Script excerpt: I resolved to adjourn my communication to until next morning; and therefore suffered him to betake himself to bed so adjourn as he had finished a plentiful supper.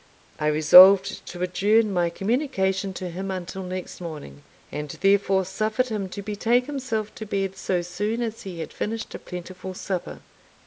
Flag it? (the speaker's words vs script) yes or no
yes